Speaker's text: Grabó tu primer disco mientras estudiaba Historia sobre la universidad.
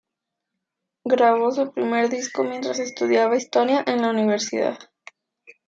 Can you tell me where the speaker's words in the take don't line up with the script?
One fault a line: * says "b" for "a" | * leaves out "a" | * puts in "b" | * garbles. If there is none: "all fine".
* says "su" for "tu"
* says "en" for "sobre"